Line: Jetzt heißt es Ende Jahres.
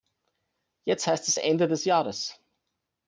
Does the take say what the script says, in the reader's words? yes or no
no